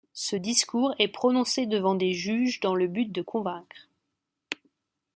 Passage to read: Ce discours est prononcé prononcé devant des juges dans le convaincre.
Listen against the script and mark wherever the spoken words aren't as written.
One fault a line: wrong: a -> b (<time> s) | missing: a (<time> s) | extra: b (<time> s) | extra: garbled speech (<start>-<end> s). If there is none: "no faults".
missing: prononcé (1.6 s)
extra: but de (2.9 s)